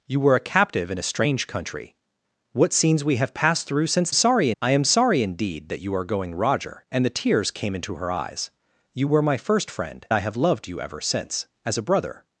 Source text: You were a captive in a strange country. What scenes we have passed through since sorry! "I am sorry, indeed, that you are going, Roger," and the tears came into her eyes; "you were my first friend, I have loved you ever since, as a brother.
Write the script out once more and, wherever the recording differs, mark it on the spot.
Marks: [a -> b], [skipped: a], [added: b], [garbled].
You were a captive in a strange country. What scenes we have passed through since sorry! "I am sorry, indeed, that you are going, Roger," and the tears came into her eyes; "you were my first friend, I have loved you ever since, as a brother.